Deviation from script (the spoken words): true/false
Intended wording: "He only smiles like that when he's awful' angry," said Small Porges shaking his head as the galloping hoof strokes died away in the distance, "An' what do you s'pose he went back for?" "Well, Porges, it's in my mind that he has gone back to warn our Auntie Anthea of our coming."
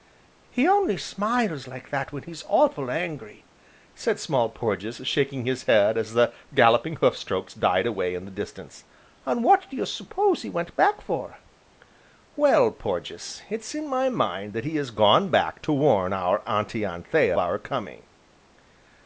true